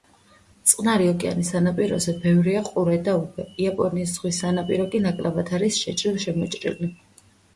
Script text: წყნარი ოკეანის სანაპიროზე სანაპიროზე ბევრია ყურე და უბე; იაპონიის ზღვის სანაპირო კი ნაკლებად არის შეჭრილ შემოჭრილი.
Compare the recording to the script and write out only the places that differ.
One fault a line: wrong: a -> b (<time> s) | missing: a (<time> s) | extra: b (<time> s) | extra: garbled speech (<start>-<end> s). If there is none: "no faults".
missing: სანაპიროზე (2.1 s)